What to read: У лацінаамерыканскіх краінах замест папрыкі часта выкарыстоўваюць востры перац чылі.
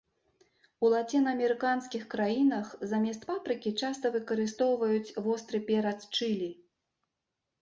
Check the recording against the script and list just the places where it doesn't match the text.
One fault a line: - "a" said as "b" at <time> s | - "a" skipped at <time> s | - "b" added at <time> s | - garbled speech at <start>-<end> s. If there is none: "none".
none